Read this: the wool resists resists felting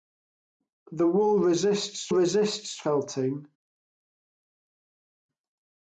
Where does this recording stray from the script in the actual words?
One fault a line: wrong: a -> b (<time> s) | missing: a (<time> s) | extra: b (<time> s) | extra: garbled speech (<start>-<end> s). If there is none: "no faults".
no faults